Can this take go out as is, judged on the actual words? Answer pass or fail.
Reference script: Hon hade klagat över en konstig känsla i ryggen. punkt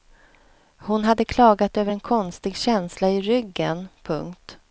pass